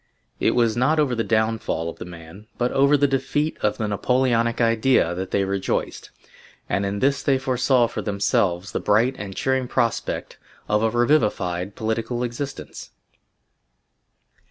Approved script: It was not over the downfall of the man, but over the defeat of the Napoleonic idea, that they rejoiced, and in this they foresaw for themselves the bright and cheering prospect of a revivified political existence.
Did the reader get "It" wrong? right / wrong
right